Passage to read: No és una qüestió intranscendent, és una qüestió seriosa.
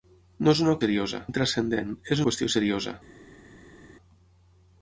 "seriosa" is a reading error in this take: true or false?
false